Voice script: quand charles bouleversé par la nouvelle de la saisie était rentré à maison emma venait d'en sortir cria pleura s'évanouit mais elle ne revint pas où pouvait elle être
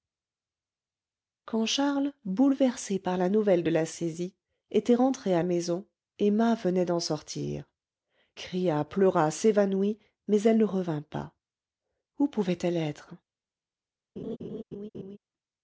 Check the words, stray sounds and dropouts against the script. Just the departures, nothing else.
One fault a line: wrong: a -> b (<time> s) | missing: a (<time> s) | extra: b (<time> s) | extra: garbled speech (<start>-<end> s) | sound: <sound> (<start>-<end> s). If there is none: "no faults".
sound: laugh (14.2-15.2 s)